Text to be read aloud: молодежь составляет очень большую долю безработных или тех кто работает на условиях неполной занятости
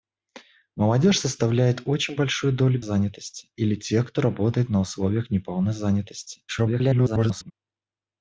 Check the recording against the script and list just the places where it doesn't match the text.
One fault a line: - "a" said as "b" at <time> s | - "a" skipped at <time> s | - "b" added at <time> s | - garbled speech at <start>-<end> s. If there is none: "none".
- "безработных" said as "занятости" at 2.8 s
- garbled speech at 6.5-7.5 s